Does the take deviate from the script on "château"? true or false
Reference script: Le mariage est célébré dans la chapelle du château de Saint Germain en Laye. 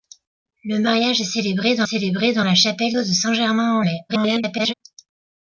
true